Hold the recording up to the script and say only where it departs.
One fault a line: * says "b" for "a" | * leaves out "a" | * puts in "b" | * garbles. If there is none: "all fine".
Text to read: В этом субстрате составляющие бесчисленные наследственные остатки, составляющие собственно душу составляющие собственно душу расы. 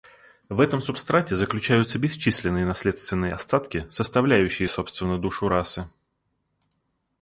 * says "заключаются" for "составляющие"
* leaves out "составляющие собственно душу"